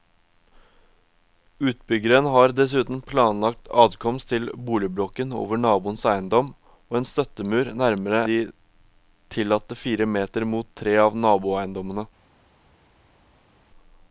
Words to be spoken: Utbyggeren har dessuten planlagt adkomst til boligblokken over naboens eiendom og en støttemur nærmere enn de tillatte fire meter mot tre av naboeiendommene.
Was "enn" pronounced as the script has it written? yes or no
no